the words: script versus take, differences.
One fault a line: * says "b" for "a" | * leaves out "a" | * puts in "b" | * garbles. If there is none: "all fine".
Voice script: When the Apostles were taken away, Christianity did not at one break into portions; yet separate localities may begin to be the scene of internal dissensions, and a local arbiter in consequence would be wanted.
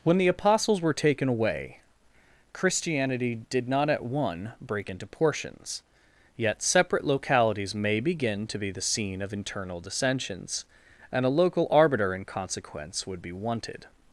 all fine